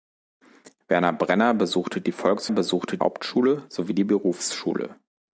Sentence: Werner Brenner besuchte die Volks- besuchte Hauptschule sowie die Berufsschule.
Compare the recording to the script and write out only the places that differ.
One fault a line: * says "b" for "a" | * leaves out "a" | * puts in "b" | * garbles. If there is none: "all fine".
all fine